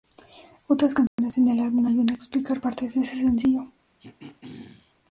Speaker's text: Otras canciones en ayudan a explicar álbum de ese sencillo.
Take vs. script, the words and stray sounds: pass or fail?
fail